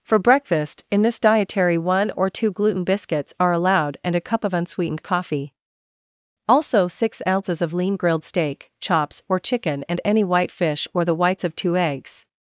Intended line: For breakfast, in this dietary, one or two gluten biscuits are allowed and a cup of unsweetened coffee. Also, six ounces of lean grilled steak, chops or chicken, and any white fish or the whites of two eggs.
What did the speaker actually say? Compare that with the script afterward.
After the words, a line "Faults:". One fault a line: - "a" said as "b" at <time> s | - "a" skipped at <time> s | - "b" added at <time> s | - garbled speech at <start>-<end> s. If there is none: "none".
For breakfast, in this dietary, one or two gluten biscuits are allowed and a cup of unsweetened coffee. Also, six ounces of lean grilled steak, chops or chicken, and any white fish or the whites of two eggs.
Faults:
none